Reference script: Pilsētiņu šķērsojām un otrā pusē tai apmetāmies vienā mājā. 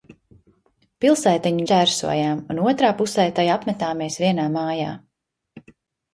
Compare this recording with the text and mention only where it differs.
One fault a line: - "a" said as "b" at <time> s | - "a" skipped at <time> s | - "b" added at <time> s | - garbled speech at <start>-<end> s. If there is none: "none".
none